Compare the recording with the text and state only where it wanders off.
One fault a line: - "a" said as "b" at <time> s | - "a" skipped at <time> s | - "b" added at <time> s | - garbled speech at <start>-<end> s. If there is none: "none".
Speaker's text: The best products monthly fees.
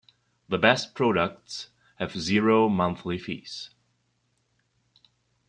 - "have zero" added at 2.0 s